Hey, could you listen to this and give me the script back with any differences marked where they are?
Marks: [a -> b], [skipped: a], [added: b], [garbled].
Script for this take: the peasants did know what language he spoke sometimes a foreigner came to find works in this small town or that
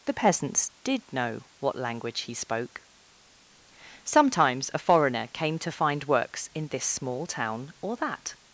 the peasants did know what language he spoke sometimes a foreigner came to find works in this small town or that